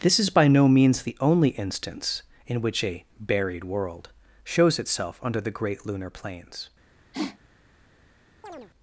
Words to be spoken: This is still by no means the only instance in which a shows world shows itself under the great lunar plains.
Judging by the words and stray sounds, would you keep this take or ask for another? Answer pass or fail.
fail